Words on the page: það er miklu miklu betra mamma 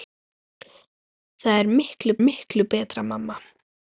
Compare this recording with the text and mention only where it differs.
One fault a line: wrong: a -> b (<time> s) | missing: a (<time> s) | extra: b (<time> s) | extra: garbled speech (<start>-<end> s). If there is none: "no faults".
no faults